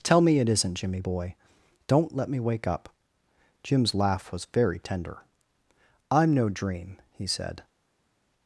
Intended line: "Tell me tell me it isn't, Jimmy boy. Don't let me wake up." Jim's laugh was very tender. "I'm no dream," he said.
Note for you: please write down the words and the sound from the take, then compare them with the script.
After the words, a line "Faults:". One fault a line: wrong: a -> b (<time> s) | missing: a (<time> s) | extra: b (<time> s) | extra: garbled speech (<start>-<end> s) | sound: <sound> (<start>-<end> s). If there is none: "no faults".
"Tell me it isn't, Jimmy boy. Don't let me wake up." Jim's laugh was very tender. "I'm no dream," he said.
Faults:
missing: tell me (0.4 s)